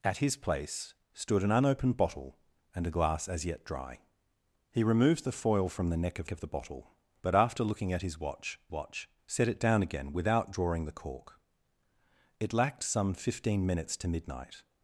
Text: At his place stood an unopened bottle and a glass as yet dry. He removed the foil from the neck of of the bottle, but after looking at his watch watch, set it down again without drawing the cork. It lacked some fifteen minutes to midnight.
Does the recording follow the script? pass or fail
pass